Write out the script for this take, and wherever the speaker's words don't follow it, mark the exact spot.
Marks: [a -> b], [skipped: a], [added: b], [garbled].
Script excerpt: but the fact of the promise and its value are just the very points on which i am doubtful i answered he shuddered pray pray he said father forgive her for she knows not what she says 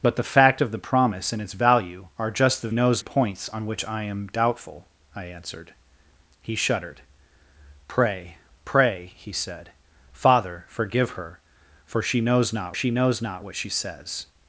but the fact of the promise and its value are just the [very -> knows] points on which i am doubtful i answered he shuddered pray pray he said father forgive her for she knows not [added: she knows not] what she says